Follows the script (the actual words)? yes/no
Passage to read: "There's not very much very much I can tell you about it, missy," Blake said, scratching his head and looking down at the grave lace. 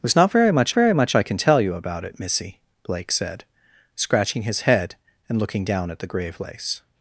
yes